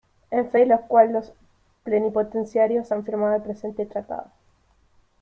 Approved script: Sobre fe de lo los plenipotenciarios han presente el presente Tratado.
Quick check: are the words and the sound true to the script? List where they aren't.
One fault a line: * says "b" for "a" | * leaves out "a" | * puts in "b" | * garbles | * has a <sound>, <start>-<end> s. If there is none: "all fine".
* says "En" for "Sobre"
* puts in "cual"
* says "firmado" for "presente"